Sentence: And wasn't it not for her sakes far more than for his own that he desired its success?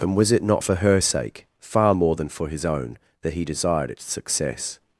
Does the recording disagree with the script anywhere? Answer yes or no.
yes